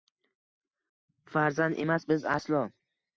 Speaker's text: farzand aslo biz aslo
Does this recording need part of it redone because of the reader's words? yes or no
yes